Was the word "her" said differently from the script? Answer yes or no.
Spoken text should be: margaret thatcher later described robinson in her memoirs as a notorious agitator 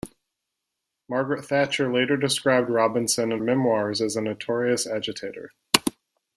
yes